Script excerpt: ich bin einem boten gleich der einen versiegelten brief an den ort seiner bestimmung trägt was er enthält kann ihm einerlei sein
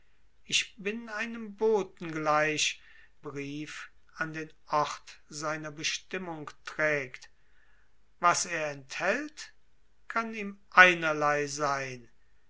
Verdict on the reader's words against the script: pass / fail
fail